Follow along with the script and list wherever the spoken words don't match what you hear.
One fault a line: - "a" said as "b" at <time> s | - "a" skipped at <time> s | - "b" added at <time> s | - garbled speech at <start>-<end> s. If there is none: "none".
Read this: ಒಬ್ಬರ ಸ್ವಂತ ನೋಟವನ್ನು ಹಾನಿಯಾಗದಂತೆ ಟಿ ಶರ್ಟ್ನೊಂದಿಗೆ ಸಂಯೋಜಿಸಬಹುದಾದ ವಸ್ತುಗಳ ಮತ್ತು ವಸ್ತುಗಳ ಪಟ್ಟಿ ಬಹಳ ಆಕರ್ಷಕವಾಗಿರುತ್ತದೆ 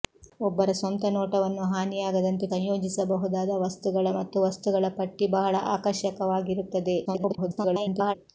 - "ಟಿ ಶರ್ಟ್ನೊಂದಿಗೆ" skipped at 2.5 s
- garbled speech at 7.1-8.2 s